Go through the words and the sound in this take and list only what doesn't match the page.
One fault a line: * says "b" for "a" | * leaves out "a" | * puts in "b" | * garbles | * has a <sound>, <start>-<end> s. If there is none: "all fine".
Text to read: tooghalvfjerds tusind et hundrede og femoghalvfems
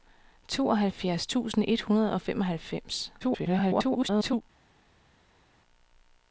* garbles